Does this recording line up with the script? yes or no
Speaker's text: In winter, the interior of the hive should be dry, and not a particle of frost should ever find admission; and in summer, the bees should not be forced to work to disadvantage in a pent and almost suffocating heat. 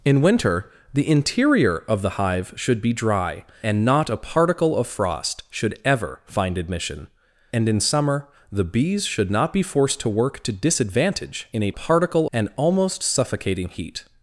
no